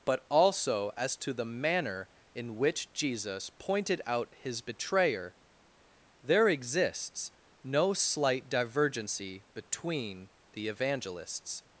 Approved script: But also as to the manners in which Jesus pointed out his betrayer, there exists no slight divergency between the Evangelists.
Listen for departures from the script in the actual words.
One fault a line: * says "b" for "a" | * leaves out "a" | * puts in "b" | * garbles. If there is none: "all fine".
* says "manner" for "manners"